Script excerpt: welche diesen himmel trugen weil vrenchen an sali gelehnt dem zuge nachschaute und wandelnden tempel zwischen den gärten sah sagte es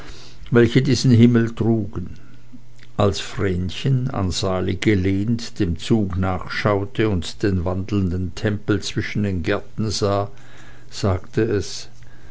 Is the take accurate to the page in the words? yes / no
no